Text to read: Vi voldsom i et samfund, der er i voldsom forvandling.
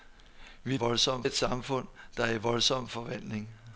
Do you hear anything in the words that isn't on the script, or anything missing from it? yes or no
no